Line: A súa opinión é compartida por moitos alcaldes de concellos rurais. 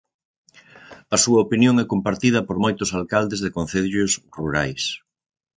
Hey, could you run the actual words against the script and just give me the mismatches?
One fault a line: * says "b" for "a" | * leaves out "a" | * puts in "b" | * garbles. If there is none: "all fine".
all fine